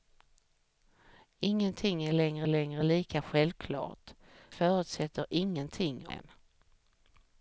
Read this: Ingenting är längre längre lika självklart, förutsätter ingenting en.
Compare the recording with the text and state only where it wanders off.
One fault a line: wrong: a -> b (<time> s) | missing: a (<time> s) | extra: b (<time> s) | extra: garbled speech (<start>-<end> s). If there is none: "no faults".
no faults